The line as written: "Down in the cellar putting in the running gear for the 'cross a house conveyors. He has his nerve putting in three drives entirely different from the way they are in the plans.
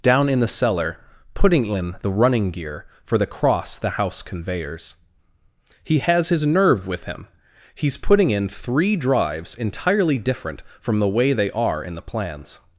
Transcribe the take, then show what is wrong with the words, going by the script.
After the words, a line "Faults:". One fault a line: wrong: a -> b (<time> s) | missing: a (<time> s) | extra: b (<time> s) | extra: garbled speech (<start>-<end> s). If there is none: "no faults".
"Down in the cellar putting in the running gear for the 'cross the house conveyors. He has his nerve with him. He's putting in three drives entirely different from the way they are in the plans.
Faults:
wrong: a -> the (3.8 s)
extra: with him He's (6.9 s)